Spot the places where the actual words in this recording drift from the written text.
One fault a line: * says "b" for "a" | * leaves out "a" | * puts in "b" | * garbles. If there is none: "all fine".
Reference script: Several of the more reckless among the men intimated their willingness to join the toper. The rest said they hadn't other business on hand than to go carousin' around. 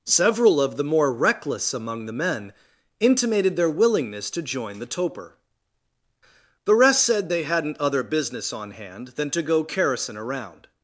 all fine